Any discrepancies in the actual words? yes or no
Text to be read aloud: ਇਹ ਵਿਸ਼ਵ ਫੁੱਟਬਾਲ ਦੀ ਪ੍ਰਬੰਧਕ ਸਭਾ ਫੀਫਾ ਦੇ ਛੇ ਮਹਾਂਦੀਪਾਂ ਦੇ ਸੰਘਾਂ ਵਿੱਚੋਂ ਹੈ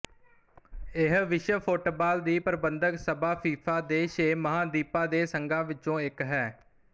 yes